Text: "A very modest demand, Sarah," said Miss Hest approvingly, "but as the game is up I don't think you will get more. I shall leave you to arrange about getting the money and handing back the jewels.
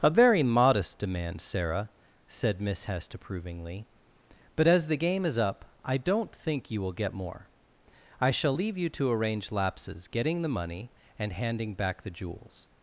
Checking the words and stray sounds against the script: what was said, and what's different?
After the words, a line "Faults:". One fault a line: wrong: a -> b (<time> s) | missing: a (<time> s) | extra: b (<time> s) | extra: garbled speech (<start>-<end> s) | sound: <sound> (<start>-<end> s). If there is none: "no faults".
"A very modest demand, Sarah," said Miss Hest approvingly, "but as the game is up I don't think you will get more. I shall leave you to arrange lapses getting the money and handing back the jewels.
Faults:
wrong: about -> lapses (9.5 s)